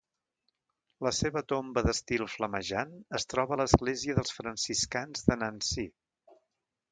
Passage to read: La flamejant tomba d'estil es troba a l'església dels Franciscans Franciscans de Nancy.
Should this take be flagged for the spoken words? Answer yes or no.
yes